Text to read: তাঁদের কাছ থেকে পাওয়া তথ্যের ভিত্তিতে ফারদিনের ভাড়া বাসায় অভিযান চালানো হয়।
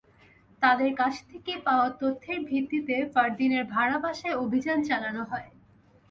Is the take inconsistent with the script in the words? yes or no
no